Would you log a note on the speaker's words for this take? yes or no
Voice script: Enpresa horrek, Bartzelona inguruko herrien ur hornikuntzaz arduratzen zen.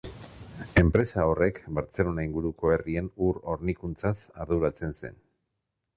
no